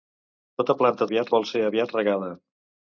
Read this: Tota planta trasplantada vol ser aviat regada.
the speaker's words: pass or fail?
fail